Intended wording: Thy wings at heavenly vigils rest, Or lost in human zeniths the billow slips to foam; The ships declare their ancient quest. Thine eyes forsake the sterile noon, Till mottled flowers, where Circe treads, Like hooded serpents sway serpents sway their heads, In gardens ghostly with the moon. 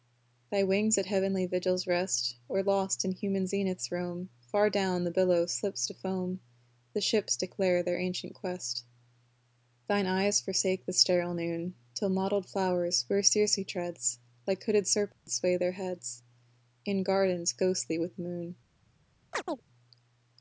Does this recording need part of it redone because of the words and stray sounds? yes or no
yes